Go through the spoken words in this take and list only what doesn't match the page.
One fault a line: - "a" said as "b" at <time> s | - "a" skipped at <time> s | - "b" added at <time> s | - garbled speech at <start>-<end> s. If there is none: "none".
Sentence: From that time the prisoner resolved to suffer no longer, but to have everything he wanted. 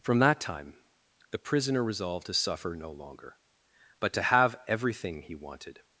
none